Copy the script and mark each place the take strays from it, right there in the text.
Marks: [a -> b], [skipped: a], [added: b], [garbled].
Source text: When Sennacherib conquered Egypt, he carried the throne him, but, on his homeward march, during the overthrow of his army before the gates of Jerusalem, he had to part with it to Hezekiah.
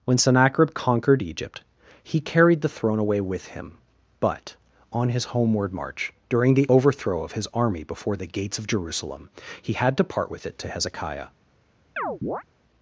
When Sennacherib conquered Egypt, he carried the throne [added: away with] him, but, on his homeward march, during the overthrow of his army before the gates of Jerusalem, he had to part with it to Hezekiah.